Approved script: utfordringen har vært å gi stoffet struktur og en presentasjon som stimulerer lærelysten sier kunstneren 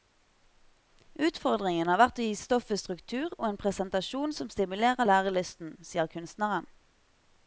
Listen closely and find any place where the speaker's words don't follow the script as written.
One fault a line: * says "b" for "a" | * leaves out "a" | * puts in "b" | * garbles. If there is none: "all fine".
all fine